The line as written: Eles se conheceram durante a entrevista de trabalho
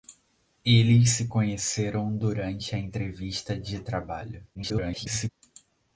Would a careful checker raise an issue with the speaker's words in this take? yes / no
yes